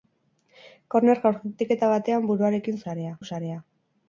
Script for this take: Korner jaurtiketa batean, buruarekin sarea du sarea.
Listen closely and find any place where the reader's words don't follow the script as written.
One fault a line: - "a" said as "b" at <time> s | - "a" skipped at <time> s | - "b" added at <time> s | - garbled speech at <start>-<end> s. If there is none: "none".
none